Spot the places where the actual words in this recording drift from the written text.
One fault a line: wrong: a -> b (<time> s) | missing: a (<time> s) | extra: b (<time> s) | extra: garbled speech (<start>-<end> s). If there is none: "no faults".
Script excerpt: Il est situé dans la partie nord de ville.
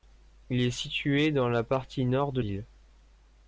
no faults